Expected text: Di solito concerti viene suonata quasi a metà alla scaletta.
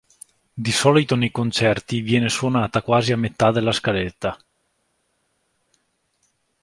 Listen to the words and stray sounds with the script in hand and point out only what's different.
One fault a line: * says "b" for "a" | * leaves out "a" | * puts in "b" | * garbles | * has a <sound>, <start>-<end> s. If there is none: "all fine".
* puts in "nei"
* says "della" for "alla"